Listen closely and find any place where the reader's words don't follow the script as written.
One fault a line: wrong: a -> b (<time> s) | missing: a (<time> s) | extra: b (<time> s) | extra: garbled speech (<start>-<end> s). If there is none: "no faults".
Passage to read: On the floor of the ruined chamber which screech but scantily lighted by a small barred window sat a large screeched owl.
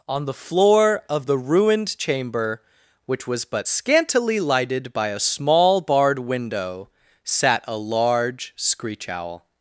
wrong: screech -> was (3.3 s)
wrong: screeched -> screech (8.6 s)